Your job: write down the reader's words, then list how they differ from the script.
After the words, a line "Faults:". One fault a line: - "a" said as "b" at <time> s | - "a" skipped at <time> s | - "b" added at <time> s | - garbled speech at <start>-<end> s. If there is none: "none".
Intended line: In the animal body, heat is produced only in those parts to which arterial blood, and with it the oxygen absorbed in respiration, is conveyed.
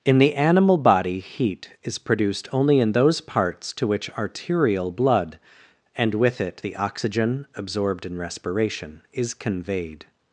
In the animal body, heat is produced only in those parts to which arterial blood, and with it the oxygen absorbed in respiration, is conveyed.
Faults:
none